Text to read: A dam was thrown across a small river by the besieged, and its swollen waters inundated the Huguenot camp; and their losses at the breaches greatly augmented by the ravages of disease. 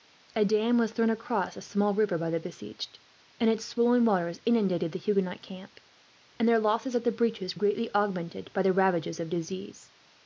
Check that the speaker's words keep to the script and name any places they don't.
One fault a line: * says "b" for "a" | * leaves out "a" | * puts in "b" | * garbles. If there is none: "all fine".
all fine